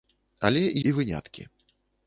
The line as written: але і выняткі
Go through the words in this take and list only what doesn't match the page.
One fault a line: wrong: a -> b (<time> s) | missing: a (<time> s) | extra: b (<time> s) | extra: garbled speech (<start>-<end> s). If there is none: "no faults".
no faults